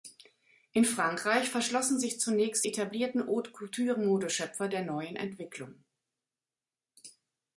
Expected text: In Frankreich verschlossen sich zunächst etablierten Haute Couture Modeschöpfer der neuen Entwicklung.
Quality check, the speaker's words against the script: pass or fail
pass